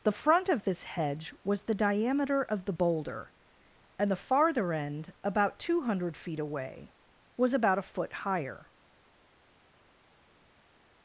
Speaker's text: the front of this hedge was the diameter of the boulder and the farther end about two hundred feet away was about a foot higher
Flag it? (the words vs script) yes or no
no